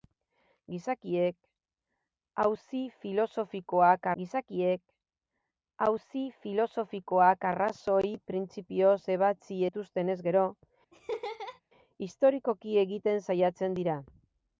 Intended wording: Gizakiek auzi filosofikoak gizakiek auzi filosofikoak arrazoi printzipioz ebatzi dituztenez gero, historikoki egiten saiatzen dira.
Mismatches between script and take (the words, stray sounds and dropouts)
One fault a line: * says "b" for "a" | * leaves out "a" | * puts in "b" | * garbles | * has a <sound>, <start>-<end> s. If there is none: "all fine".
* has a laugh, 10.9-11.6 s